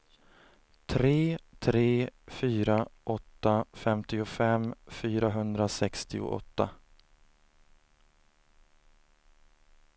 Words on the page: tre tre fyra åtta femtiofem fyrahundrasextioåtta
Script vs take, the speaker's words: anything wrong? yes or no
no